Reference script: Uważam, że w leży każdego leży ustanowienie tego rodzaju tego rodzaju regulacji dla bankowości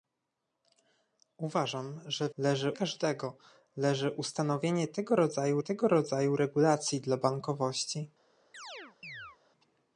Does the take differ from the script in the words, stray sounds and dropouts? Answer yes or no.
yes